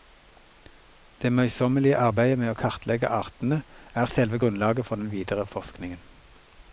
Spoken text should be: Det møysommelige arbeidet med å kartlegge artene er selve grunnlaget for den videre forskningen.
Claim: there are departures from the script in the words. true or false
false